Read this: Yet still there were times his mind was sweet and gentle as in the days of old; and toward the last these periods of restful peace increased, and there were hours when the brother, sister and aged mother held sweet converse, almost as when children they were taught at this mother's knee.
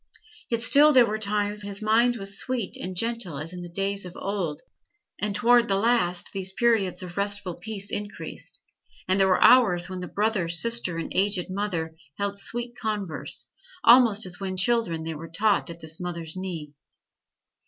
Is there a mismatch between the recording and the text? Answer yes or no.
no